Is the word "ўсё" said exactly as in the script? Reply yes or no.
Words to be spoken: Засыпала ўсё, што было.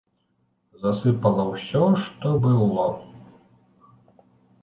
yes